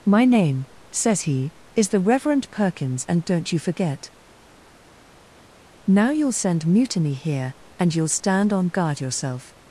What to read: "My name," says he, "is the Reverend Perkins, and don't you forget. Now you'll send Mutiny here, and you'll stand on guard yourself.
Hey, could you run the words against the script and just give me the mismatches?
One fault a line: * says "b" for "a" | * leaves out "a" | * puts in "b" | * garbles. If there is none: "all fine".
all fine